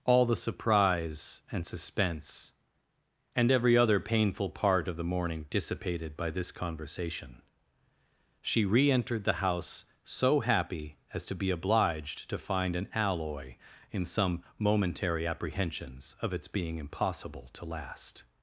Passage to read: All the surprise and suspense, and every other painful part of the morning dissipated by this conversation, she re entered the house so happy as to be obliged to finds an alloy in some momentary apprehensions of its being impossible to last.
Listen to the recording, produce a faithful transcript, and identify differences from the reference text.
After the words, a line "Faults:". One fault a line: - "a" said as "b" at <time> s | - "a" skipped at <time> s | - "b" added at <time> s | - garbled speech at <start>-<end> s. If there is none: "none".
All the surprise and suspense, and every other painful part of the morning dissipated by this conversation, she re entered the house so happy as to be obliged to find an alloy in some momentary apprehensions of its being impossible to last.
Faults:
- "finds" said as "find" at 12.4 s